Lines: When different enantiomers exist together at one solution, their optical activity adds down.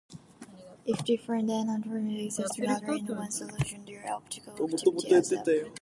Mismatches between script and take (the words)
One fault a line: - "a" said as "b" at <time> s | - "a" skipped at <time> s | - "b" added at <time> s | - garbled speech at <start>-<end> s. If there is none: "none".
- "When" said as "If" at 0.8 s
- "at" said as "in" at 2.9 s
- "down" said as "up" at 5.3 s